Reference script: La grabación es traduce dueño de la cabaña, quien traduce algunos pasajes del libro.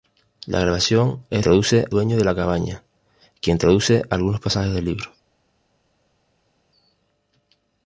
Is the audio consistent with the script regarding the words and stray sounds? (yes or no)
yes